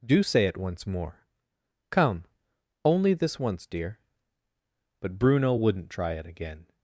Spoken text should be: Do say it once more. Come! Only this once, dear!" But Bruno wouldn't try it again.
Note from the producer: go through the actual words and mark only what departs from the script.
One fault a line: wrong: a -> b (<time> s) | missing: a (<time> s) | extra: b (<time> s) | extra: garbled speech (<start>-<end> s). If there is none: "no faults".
no faults